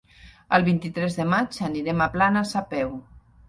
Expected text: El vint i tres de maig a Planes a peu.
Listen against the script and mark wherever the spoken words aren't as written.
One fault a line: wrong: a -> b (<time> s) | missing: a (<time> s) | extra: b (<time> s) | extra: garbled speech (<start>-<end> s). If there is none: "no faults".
extra: anirem (1.7 s)